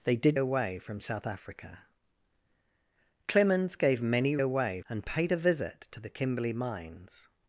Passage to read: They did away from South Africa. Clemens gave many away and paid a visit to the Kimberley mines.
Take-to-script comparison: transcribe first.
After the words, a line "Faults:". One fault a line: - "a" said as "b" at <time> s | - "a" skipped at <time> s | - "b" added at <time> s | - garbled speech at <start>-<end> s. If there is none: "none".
They did away from South Africa. Clemens gave many away and paid a visit to the Kimberley mines.
Faults:
none